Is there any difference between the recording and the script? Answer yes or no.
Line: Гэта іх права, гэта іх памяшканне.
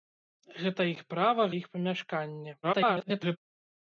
yes